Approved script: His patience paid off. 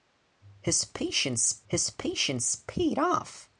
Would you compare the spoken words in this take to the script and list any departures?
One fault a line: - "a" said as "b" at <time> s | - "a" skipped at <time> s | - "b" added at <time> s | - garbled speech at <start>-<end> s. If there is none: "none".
- "his patience" added at 1.7 s